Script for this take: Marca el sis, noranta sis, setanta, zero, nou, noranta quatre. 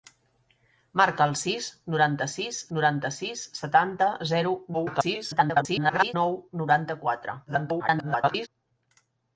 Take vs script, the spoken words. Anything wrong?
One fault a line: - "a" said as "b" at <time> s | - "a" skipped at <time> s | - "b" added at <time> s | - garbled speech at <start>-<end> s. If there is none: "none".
- "noranta sis" added at 2.8 s
- garbled speech at 4.7-6.1 s
- garbled speech at 7.5-8.5 s